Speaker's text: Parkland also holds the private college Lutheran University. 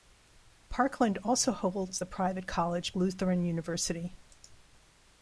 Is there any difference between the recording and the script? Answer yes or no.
no